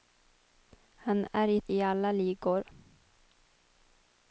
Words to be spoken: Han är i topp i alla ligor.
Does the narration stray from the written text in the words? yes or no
yes